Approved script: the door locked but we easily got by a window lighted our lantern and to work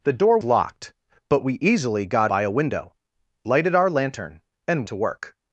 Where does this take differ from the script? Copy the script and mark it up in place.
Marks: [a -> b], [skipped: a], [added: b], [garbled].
the door locked but we easily got by a window lighted our lantern and to work